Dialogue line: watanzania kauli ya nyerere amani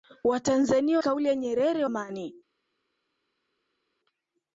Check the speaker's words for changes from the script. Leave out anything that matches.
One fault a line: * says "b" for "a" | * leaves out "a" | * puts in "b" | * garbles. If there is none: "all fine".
all fine